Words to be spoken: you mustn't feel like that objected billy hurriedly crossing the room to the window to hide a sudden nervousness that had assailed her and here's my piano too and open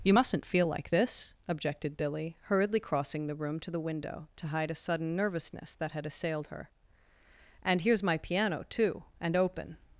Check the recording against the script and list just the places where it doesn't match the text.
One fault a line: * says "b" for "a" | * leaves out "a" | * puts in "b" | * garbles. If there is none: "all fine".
* says "this" for "that"